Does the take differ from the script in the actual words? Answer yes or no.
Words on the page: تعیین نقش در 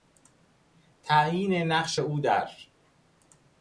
yes